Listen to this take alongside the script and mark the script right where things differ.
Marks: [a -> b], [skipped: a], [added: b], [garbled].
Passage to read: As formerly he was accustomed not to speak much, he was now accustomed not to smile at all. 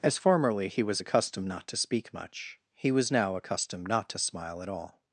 As formerly he was accustomed not to speak much, he was now accustomed not to smile at all.